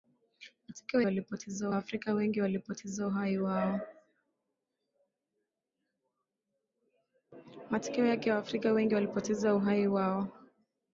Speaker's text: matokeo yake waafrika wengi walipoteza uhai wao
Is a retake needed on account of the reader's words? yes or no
yes